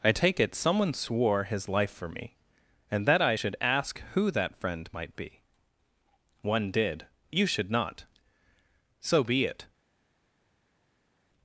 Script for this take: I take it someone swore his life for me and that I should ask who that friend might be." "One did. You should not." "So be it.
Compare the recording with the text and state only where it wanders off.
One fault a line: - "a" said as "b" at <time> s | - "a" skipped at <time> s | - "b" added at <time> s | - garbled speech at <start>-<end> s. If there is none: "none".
none